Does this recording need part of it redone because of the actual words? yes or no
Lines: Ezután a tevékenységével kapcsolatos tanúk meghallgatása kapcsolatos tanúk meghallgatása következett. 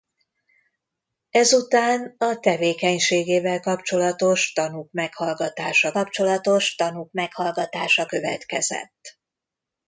no